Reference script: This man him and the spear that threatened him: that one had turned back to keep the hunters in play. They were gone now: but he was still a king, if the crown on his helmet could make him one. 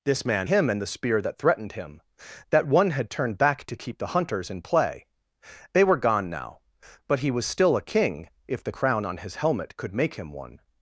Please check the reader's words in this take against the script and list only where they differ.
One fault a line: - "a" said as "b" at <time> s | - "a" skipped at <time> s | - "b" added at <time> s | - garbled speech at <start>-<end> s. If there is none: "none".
none